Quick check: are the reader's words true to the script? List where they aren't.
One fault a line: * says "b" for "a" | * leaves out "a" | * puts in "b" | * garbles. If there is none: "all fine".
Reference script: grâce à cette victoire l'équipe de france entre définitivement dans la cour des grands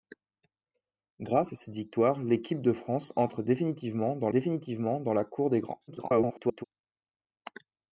* puts in "définitivement dans"
* garbles